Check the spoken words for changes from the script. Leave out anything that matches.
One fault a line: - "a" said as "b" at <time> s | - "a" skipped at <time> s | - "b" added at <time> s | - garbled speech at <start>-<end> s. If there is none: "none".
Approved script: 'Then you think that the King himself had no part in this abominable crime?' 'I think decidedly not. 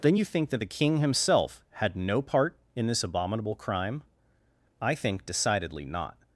none